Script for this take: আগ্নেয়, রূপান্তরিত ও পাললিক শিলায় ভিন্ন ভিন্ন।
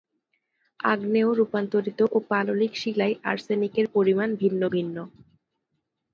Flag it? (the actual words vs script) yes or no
yes